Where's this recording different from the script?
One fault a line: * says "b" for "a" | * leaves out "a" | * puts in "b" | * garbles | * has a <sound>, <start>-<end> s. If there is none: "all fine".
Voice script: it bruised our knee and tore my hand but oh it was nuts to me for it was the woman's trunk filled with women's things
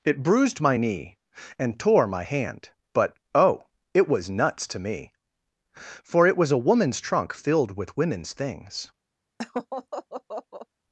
* says "my" for "our"
* says "a" for "the"
* has a laugh, 9.4-10.7 s